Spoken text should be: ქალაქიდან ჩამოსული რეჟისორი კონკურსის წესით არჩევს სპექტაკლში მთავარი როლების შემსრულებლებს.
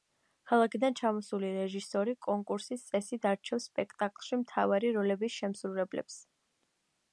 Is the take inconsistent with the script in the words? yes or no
no